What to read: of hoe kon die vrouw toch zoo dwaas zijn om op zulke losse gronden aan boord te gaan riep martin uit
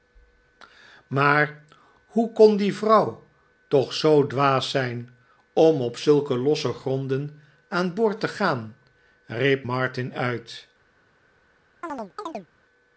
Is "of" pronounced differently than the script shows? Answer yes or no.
yes